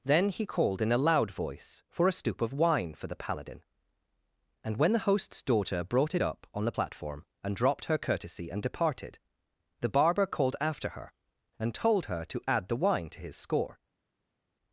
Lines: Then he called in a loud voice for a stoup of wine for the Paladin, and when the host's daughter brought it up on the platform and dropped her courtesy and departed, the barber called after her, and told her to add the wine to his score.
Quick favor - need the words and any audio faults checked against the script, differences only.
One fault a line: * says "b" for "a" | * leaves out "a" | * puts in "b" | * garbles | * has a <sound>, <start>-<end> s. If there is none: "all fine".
all fine